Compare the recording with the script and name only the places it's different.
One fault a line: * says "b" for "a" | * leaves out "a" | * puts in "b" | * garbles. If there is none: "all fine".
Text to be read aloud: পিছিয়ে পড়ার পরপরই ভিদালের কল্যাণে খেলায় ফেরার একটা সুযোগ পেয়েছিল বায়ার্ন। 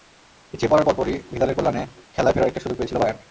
all fine